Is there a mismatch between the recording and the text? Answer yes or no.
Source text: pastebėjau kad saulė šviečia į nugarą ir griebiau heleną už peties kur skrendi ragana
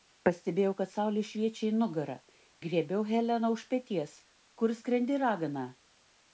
yes